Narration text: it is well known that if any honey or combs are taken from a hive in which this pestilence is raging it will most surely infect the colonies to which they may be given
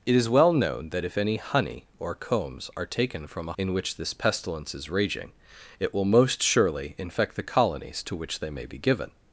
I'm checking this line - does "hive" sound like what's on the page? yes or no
no